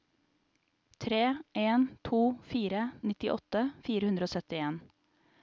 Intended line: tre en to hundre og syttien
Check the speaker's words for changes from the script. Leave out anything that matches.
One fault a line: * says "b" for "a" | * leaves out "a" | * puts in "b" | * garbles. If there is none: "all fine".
* puts in "fire nittiåtte fire"